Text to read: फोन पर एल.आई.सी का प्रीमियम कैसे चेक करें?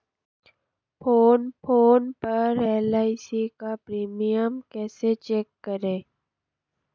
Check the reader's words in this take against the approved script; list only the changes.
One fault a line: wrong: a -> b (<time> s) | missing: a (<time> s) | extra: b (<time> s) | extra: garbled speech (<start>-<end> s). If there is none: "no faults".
extra: फोन (1.6 s)